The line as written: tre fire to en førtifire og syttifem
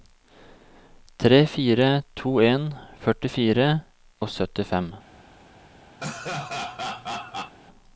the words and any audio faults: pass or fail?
fail